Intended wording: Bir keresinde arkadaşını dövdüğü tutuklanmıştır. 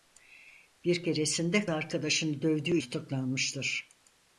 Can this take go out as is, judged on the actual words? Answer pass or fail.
pass